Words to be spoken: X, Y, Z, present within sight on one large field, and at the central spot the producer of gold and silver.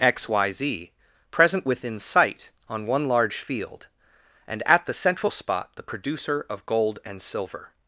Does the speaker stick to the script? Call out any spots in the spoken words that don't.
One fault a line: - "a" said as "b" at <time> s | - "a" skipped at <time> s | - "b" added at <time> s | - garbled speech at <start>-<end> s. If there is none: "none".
none